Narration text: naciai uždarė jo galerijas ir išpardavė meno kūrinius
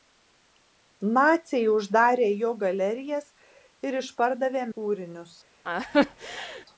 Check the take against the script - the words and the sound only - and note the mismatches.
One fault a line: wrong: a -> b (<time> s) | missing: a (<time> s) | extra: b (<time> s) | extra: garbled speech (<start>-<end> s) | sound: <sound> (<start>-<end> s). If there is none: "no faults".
missing: meno (4.6 s)
sound: laugh (5.6-6.7 s)